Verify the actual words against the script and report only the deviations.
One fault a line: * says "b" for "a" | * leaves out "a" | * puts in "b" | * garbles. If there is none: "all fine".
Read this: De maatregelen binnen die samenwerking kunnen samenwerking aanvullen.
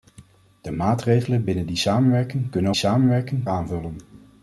all fine